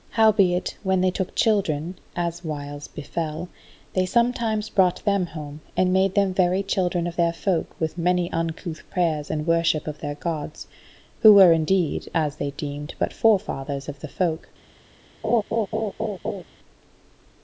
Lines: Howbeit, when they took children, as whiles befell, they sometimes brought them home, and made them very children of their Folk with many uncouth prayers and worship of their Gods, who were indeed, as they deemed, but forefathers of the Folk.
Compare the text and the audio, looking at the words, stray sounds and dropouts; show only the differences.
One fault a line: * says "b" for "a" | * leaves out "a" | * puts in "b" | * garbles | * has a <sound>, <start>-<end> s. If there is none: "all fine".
* has a laugh, 15.2-16.4 s